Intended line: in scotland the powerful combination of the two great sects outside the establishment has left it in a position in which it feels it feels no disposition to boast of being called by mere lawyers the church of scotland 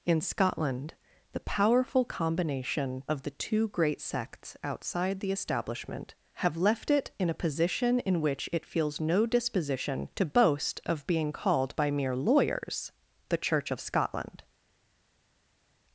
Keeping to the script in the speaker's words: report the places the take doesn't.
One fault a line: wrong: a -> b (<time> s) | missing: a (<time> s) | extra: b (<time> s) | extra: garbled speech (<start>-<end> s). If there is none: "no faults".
wrong: has -> have (6.3 s)
missing: it feels (9.0 s)